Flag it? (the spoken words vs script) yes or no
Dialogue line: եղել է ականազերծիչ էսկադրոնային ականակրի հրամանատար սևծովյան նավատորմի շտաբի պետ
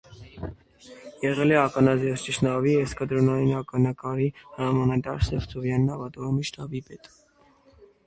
yes